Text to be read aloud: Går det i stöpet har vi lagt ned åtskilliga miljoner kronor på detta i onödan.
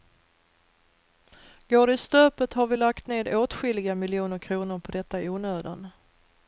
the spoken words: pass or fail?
pass